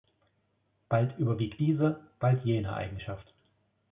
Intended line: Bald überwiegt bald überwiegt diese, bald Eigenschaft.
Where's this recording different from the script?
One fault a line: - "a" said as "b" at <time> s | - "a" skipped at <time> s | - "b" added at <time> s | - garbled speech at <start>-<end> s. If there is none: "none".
- "bald überwiegt" skipped at 1.6 s
- "jene" added at 2.4 s